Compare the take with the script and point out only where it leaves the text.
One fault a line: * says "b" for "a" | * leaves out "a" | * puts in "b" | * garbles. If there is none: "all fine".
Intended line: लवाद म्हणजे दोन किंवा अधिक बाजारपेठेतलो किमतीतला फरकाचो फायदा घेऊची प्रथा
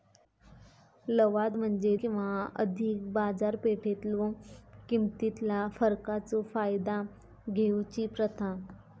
* leaves out "दोन"